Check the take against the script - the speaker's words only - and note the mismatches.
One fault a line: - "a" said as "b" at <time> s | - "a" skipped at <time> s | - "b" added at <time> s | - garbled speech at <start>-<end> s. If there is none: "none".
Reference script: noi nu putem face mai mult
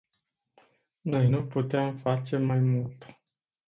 none